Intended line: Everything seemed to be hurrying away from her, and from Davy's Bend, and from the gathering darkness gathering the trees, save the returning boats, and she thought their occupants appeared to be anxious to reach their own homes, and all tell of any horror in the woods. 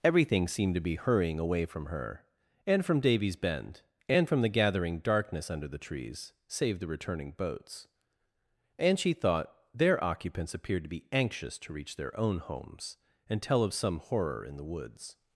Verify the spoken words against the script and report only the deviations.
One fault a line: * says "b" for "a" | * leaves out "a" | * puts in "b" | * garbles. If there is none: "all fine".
* says "under" for "gathering"
* leaves out "all"
* says "some" for "any"